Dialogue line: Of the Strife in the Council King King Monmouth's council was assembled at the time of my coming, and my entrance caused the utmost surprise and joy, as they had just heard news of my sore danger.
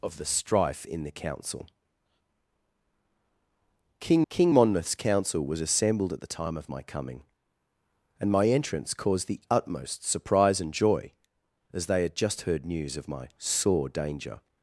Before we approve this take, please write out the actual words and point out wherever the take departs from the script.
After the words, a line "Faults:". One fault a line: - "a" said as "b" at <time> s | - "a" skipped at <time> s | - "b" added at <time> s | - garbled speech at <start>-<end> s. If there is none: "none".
Of the Strife in the Council King King Monmouth's council was assembled at the time of my coming, and my entrance caused the utmost surprise and joy, as they had just heard news of my sore danger.
Faults:
none